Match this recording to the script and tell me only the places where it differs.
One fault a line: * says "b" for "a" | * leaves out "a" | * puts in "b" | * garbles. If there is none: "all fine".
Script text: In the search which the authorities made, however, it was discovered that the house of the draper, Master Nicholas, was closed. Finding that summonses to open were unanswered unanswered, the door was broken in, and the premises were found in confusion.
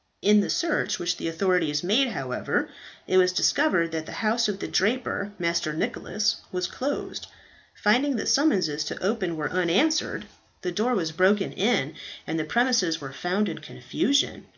* leaves out "unanswered"